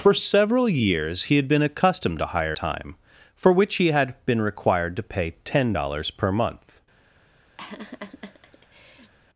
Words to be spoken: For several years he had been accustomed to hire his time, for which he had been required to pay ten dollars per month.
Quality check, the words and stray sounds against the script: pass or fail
fail